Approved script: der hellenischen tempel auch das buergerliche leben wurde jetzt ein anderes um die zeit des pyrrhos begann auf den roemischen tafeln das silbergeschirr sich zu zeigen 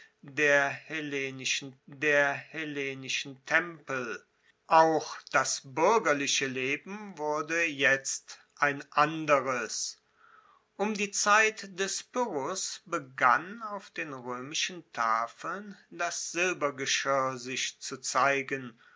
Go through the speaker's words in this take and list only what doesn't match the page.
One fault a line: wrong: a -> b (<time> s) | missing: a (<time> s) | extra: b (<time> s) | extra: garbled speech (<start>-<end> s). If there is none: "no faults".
extra: der hellenischen (1.9 s)